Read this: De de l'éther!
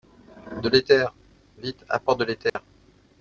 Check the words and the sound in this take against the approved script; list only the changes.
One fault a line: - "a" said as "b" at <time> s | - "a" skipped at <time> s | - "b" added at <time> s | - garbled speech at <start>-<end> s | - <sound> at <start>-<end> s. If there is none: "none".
- "l'éther vite apporte" added at 0.7 s
- dropout at 2.5-2.6 s